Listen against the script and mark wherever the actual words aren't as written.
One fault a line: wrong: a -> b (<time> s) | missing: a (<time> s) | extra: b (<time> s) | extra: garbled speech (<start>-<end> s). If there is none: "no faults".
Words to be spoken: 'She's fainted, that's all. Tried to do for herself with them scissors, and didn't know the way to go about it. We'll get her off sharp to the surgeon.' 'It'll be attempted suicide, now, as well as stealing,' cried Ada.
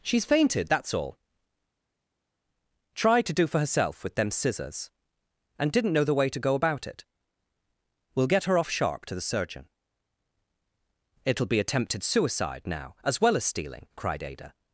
no faults